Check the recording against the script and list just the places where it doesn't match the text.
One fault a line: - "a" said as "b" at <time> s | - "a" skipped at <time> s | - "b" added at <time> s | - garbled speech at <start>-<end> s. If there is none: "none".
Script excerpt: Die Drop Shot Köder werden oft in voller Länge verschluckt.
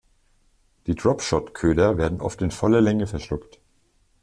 none